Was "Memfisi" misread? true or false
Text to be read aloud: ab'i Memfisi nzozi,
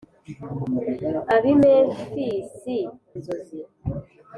false